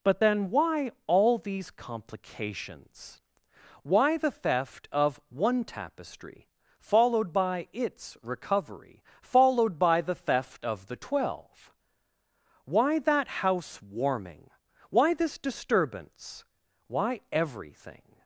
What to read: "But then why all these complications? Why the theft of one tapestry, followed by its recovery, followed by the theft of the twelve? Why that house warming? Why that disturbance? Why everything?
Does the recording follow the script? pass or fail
fail